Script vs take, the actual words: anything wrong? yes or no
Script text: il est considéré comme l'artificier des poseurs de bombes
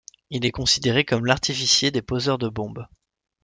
no